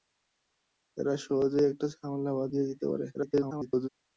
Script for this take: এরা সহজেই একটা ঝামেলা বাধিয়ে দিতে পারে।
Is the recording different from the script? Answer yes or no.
yes